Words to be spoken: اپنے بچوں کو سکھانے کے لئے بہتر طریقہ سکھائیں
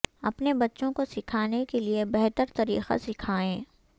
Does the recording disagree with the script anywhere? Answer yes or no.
no